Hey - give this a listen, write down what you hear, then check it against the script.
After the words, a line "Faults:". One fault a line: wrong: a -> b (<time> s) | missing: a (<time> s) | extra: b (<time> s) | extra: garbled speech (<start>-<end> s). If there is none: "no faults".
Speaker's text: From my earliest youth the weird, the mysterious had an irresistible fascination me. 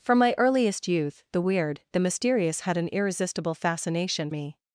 From my earliest youth the weird, the mysterious had an irresistible fascination me.
Faults:
no faults